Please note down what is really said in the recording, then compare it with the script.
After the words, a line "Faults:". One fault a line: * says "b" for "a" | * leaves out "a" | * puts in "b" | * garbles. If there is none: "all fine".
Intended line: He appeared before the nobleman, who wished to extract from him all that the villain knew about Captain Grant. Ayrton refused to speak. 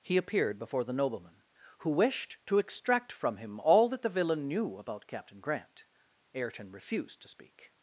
He appeared before the nobleman, who wished to extract from him all that the villain knew about Captain Grant. Ayrton refused to speak.
Faults:
all fine